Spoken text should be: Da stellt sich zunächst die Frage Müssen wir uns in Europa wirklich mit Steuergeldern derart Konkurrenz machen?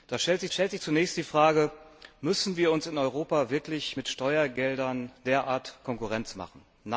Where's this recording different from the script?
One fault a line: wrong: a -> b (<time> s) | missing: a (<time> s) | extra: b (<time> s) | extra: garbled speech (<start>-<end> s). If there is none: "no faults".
extra: stellt sich (0.5 s)